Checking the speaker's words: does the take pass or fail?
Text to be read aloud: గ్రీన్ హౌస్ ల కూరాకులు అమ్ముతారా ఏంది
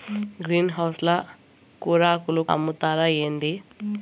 pass